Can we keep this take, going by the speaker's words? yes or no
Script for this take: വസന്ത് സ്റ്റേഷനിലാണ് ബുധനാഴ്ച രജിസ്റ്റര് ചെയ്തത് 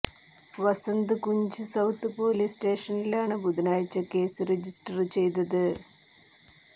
no